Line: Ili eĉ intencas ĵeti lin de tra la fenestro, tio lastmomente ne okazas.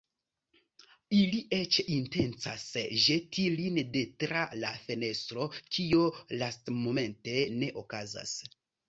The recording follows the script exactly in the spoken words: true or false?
false